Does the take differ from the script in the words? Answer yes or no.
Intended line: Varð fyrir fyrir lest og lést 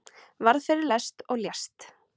yes